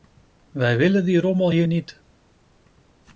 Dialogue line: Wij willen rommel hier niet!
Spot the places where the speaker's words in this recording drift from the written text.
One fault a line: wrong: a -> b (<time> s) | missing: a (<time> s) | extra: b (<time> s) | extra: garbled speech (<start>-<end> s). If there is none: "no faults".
extra: die (1.1 s)